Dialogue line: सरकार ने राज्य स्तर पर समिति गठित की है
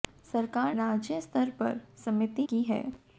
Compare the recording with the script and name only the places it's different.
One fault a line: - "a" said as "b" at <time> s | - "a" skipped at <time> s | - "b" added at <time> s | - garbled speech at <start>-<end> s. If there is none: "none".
- "ने" skipped at 0.8 s
- "गठित" skipped at 2.5 s